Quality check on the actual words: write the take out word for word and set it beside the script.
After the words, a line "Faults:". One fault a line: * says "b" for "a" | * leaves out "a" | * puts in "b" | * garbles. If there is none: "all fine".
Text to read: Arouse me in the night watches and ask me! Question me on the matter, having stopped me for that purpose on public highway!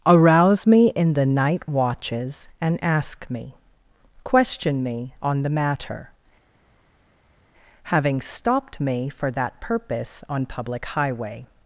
Arouse me in the night watches and ask me! Question me on the matter, having stopped me for that purpose on public highway!
Faults:
all fine